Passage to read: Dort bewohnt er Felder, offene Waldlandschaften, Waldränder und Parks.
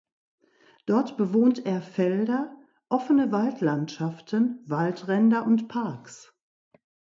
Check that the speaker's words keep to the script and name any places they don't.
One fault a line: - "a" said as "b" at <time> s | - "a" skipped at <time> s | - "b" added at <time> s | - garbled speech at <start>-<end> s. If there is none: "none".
none